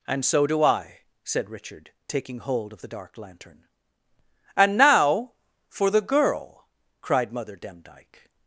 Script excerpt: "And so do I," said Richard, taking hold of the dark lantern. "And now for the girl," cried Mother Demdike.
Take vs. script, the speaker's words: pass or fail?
pass